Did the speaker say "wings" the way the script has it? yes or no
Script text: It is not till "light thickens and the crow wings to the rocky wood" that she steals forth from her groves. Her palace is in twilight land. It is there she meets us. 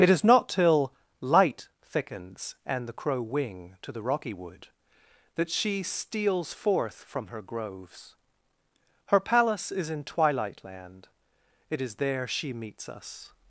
no